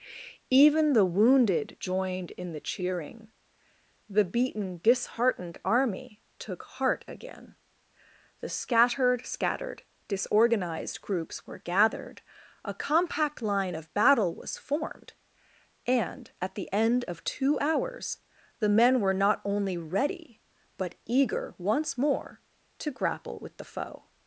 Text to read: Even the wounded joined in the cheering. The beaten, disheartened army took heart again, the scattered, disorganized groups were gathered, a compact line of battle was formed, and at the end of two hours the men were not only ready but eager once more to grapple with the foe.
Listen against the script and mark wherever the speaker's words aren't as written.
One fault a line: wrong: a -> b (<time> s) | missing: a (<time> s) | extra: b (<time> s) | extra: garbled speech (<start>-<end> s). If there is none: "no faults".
extra: scattered (9.3 s)